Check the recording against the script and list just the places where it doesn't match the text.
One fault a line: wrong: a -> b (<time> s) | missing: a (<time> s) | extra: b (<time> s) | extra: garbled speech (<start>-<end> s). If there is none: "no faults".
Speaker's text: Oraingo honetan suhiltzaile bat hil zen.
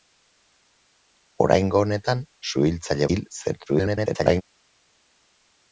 missing: bat (3.1 s)
extra: garbled speech (3.7-4.4 s)